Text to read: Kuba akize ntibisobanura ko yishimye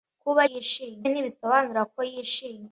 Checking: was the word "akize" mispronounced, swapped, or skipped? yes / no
yes